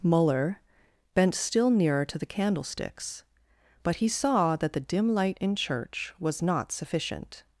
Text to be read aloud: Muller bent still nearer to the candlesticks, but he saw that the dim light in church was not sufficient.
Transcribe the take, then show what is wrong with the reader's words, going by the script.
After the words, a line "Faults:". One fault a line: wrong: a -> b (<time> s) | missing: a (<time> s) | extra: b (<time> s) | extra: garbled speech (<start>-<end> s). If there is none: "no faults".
Muller bent still nearer to the candlesticks, but he saw that the dim light in church was not sufficient.
Faults:
no faults